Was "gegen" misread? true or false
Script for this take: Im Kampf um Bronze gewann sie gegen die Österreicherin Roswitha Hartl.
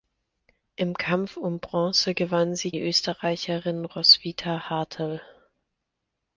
true